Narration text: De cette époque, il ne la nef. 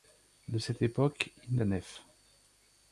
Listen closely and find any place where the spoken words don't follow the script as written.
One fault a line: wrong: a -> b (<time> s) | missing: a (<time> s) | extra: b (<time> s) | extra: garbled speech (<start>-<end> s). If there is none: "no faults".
no faults